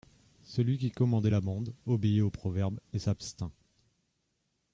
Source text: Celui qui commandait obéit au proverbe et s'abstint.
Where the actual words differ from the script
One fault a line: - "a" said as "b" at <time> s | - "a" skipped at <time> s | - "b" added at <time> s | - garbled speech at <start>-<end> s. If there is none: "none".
- "la bande" added at 1.3 s